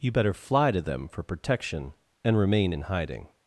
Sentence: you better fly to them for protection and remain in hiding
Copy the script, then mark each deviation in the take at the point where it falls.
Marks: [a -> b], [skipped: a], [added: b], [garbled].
you better fly to them for protection and remain in hiding